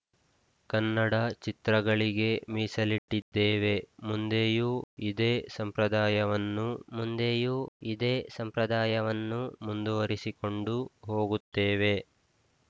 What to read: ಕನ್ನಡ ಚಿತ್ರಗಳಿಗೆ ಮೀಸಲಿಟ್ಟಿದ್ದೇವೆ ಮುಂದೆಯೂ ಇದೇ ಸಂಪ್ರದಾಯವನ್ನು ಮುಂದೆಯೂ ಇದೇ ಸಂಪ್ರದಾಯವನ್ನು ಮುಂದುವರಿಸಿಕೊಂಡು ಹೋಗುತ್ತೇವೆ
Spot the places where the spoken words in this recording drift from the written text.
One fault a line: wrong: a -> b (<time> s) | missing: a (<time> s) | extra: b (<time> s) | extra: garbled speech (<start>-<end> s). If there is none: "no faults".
no faults